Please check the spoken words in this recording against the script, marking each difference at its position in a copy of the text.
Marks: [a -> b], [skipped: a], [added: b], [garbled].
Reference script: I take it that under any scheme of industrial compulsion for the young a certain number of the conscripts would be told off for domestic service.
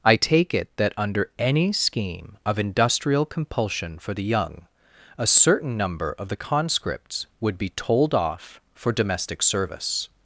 I take it that under any scheme of industrial compulsion for the young a certain number of the conscripts would be told off for domestic service.